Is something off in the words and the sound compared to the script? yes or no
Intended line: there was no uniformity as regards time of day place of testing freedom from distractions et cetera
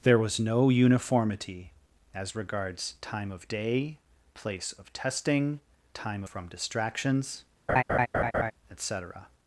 yes